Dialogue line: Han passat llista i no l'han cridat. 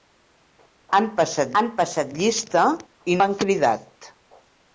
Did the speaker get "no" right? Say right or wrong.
wrong